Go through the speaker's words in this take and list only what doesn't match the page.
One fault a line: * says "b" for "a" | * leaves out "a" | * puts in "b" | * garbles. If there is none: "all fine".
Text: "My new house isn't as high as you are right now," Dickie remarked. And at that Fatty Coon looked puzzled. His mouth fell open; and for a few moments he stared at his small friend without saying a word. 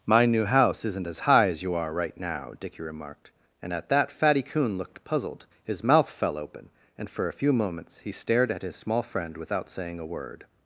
all fine